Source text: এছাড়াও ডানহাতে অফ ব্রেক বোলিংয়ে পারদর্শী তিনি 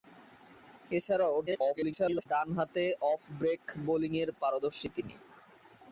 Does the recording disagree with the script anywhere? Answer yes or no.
yes